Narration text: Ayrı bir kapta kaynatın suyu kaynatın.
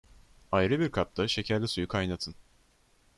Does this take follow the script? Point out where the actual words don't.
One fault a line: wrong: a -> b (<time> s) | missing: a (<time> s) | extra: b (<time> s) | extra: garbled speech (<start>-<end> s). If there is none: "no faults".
wrong: kaynatın -> şekerli (1.3 s)